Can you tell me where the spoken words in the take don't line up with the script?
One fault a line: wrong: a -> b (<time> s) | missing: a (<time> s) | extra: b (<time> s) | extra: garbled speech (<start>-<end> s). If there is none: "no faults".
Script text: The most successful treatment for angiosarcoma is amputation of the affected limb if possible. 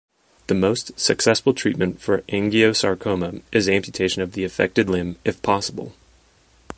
no faults